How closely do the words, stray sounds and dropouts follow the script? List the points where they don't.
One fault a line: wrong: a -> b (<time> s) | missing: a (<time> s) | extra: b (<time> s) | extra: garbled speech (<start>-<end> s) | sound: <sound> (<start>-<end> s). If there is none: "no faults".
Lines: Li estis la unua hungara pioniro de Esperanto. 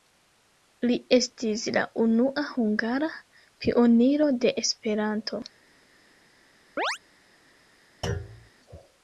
sound: chirp (6.8-7.0 s)
sound: thud (8.0-8.5 s)